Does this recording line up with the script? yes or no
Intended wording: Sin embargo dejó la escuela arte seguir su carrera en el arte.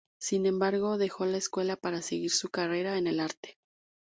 no